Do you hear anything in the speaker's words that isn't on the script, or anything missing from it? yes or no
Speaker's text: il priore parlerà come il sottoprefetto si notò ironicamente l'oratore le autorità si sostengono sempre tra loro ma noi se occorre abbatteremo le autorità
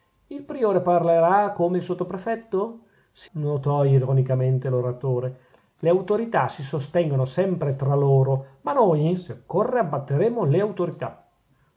no